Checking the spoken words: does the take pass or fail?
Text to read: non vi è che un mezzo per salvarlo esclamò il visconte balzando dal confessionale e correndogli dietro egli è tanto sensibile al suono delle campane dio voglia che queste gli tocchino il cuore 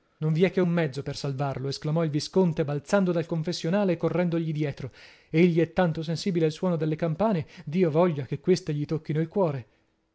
pass